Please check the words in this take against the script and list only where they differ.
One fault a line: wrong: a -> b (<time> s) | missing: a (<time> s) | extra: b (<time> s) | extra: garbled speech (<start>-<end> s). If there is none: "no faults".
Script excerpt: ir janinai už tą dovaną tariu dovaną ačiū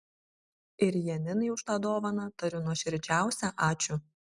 wrong: dovaną -> nuoširdžiausią (2.7 s)